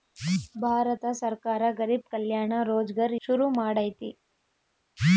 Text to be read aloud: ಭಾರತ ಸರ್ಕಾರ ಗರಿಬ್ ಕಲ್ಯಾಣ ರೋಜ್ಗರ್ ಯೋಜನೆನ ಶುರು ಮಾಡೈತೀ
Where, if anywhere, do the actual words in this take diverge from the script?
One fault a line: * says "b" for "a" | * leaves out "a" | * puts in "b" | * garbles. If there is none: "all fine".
* leaves out "ಯೋಜನೆನ"